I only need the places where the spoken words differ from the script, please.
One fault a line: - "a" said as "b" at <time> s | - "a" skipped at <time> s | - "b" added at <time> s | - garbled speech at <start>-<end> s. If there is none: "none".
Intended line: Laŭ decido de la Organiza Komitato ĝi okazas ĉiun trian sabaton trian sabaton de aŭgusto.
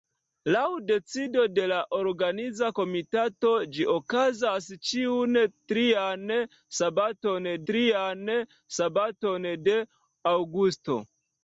none